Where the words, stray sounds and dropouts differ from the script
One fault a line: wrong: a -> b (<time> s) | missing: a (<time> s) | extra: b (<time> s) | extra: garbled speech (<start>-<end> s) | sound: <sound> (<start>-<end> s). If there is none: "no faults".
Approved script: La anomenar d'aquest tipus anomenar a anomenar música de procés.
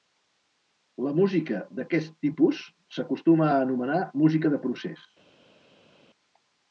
wrong: anomenar -> música (1.2 s)
wrong: anomenar -> s'acostuma (3.0 s)